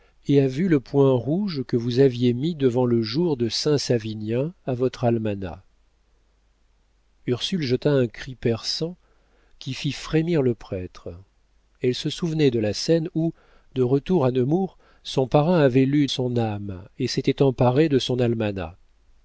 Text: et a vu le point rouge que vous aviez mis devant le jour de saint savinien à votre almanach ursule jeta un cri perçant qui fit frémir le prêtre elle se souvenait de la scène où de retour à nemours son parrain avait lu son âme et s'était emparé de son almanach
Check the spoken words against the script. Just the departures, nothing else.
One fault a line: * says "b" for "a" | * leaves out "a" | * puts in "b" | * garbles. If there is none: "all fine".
all fine